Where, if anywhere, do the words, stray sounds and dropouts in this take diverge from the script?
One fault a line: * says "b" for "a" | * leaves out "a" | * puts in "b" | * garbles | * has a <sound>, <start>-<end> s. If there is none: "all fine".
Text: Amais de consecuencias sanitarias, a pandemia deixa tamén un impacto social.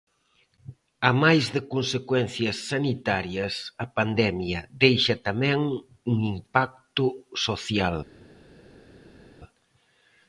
all fine